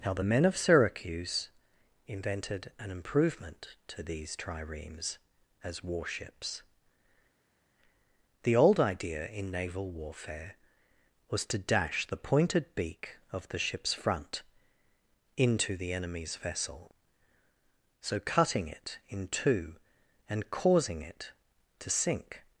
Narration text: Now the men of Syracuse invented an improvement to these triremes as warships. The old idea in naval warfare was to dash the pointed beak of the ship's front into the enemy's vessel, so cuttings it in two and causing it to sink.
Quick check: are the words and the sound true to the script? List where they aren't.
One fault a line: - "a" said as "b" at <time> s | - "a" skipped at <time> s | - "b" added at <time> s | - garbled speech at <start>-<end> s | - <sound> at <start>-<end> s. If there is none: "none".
- "cuttings" said as "cutting" at 18.2 s